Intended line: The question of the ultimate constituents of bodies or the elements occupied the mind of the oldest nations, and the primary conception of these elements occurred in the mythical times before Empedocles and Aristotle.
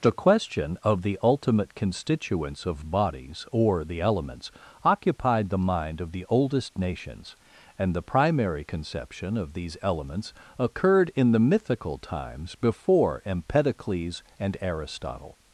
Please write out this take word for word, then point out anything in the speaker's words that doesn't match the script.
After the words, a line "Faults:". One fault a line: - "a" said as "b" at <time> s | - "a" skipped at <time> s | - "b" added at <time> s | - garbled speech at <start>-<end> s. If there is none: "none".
The question of the ultimate constituents of bodies or the elements occupied the mind of the oldest nations, and the primary conception of these elements occurred in the mythical times before Empedocles and Aristotle.
Faults:
none